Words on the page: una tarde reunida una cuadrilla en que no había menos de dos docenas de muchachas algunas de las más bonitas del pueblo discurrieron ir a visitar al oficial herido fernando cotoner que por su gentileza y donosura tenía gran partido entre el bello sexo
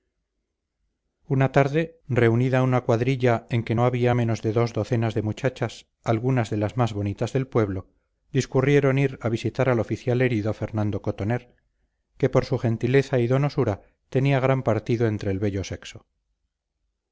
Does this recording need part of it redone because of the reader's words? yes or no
no